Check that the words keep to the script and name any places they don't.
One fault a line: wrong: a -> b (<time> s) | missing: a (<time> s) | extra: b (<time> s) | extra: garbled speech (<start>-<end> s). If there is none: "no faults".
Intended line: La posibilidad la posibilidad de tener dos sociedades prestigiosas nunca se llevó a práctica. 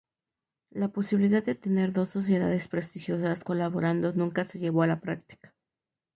missing: la posibilidad (1.4 s)
extra: colaborando (3.4 s)
extra: la (4.9 s)